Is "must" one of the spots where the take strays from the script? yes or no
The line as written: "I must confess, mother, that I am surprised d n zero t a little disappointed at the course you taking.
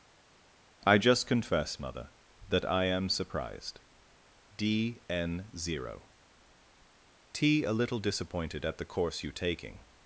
yes